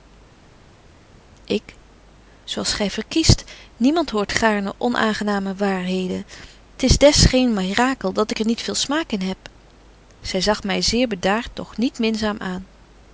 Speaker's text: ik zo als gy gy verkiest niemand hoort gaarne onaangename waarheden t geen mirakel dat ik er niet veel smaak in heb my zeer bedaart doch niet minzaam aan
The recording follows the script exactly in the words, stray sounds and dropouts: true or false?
false